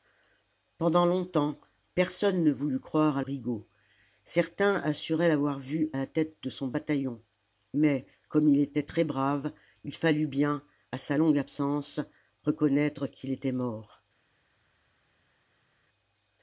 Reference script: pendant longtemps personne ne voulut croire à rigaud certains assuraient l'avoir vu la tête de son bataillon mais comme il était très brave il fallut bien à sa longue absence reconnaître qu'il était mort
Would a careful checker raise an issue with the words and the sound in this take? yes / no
no